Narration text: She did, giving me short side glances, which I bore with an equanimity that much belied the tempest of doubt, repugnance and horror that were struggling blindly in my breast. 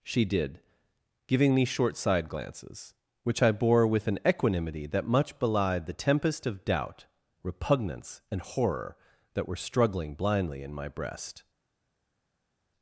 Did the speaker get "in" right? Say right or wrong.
right